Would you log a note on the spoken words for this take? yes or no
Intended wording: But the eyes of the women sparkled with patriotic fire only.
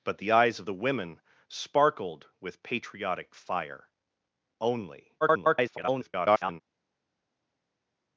yes